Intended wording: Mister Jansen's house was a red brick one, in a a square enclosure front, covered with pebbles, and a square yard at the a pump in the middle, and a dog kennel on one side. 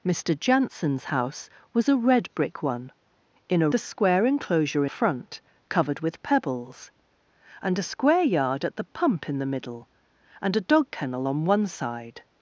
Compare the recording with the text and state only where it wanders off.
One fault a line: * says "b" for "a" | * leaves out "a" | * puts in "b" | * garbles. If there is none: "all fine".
all fine